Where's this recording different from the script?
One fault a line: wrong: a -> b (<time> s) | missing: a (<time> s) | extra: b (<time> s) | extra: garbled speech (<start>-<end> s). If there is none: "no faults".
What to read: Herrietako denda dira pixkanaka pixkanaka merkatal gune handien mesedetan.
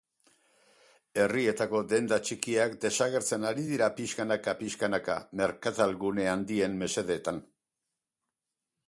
extra: txikiak desagertzen ari (2.3 s)